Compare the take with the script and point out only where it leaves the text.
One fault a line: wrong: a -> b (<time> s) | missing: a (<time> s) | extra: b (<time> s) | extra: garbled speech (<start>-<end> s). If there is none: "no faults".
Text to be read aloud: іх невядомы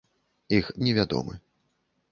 no faults